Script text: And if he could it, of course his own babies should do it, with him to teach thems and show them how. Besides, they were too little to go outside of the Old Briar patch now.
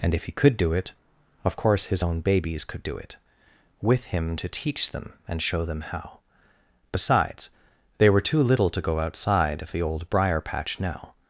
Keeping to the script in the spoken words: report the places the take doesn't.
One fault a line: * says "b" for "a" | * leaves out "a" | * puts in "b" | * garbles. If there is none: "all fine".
* puts in "do"
* says "could" for "should"
* says "them" for "thems"